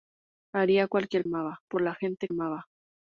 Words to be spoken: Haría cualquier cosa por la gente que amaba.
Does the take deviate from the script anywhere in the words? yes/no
yes